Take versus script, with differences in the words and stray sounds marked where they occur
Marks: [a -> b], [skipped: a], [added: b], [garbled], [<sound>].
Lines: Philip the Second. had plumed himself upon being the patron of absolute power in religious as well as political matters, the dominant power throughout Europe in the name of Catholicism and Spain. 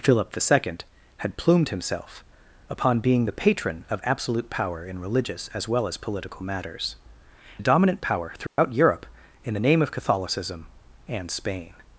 Philip the Second. had plumed himself upon being the patron of absolute power in religious as well as political matters, the dominant power throughout [dropout] Europe in the name of Catholicism and Spain.